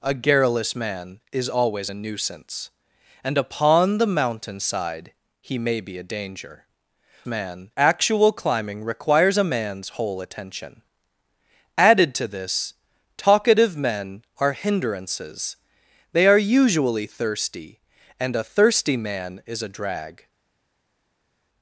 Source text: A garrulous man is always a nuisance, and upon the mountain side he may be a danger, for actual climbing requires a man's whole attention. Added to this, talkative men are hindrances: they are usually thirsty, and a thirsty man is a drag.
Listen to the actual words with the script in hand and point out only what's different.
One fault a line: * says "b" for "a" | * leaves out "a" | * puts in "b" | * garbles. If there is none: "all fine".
* says "man" for "for"